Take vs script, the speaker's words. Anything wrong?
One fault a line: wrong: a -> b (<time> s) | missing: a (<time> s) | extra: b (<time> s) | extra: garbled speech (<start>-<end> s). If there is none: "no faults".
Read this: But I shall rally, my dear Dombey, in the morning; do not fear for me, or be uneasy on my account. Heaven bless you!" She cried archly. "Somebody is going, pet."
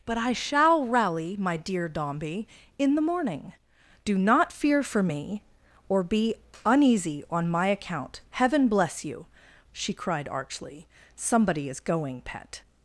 no faults